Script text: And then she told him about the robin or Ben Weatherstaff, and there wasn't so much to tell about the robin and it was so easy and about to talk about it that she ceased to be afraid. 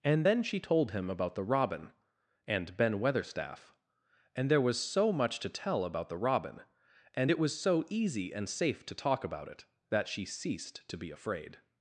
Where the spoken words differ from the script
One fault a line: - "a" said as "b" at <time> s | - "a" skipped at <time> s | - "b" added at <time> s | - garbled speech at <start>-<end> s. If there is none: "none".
- "or" said as "and" at 2.5 s
- "wasn't" said as "was" at 4.6 s
- "about" said as "safe" at 8.5 s